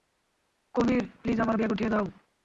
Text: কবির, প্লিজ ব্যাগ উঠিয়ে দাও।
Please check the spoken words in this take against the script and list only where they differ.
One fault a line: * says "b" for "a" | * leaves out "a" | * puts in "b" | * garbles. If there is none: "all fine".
* puts in "আমার"